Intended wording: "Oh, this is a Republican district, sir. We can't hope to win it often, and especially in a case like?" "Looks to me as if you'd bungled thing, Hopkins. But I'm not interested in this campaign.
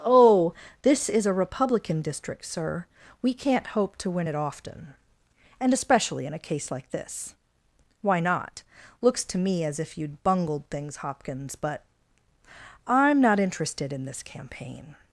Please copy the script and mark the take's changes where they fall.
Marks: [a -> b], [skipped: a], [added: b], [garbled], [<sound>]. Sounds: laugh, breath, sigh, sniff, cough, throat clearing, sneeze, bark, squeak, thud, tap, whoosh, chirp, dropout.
"Oh, this is a Republican district, sir. We can't hope to win it often, and especially in a case like?" [added: this Why not] "Looks to me as if you'd bungled [thing, -> things] Hopkins. But I'm not interested in this campaign.